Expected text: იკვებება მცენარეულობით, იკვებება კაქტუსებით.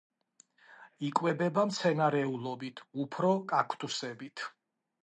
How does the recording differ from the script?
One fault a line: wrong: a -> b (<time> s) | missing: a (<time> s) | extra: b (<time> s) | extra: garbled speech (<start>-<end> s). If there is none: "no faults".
wrong: იკვებება -> უფრო (3.0 s)